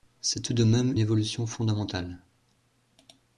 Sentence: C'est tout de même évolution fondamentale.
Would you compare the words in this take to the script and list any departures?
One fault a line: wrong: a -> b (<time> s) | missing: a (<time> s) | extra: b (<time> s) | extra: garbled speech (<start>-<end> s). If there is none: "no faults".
no faults